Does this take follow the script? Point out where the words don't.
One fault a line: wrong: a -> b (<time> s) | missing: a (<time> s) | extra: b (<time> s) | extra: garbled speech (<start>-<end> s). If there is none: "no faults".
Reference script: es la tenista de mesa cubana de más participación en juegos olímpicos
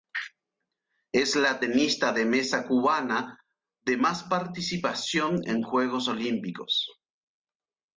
no faults